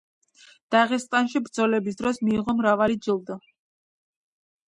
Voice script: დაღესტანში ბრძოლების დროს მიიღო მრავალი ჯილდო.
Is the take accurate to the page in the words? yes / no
yes